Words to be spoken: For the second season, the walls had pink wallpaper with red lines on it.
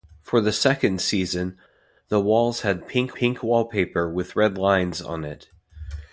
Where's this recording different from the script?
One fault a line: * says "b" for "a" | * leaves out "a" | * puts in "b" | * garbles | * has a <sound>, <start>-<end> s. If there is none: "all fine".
* puts in "pink"